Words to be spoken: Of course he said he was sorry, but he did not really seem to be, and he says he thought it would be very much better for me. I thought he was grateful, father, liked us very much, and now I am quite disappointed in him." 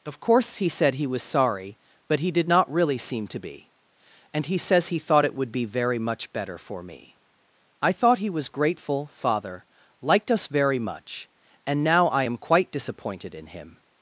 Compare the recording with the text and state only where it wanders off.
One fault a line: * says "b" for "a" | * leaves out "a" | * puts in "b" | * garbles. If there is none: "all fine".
all fine